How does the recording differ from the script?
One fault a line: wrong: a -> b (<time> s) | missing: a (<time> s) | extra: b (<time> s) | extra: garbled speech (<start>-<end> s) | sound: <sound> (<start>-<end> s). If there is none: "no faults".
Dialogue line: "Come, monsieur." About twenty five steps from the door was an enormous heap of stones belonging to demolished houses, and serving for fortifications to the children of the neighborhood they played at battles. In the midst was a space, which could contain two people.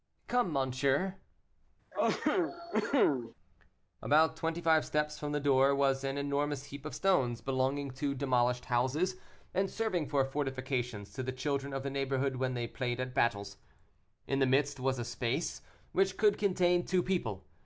sound: cough (1.9-3.3 s)
extra: when (12.4 s)